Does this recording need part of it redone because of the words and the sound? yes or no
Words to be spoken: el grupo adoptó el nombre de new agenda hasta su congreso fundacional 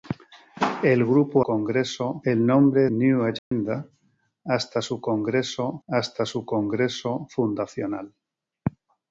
yes